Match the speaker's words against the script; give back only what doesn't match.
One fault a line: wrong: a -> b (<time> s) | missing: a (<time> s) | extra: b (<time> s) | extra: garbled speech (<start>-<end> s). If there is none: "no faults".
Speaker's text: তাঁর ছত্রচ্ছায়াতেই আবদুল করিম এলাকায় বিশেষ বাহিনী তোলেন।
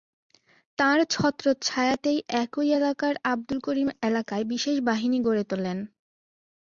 extra: একই এলাকার (2.4 s)
extra: গড়ে (5.3 s)